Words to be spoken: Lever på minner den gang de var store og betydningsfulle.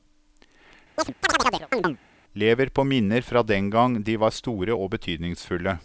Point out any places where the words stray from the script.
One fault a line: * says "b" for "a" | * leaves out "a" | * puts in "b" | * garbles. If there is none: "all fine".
* puts in "fra"